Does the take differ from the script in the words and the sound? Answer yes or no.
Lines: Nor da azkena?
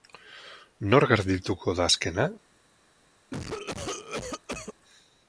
yes